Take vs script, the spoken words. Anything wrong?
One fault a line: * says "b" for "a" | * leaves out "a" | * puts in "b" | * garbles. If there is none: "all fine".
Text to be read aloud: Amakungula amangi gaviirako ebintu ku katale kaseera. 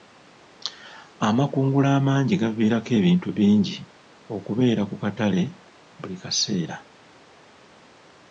* puts in "bingi okubeera"
* puts in "buli"